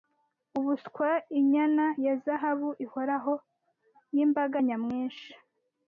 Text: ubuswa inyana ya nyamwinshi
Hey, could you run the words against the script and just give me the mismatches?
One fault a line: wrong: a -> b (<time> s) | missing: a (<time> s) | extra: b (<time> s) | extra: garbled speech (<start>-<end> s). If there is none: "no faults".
extra: zahabu ihoraho y'imbaga (2.2 s)